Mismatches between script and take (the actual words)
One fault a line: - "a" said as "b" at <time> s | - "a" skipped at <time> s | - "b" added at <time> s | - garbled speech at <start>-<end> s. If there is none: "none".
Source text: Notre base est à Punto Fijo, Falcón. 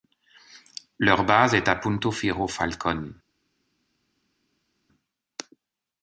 - "Notre" said as "Leur" at 1.0 s